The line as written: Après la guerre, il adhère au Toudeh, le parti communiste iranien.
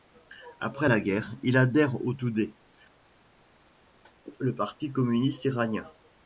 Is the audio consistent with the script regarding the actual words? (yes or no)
yes